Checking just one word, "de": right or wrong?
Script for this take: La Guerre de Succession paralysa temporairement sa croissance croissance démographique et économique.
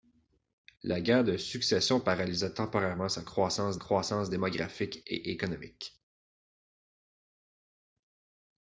right